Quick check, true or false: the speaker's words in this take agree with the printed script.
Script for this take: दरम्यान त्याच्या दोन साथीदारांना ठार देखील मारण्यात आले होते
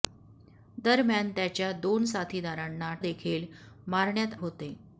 false